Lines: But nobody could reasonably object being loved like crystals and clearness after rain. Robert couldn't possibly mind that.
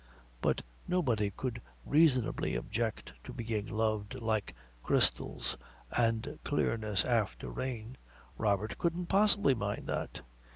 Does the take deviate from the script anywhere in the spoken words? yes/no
yes